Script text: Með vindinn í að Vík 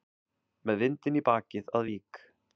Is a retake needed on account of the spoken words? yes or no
yes